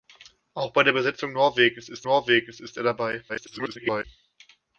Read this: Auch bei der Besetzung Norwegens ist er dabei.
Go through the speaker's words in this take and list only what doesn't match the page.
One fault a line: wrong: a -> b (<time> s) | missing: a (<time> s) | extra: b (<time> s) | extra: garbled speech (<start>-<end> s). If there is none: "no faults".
extra: Norwegens ist (2.0 s)
extra: garbled speech (3.3-4.0 s)